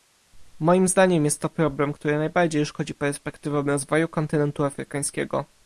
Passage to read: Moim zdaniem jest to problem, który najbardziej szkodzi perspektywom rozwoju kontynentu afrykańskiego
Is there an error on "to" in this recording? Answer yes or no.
no